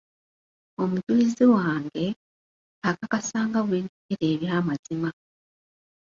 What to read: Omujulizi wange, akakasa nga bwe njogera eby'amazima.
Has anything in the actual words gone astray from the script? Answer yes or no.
no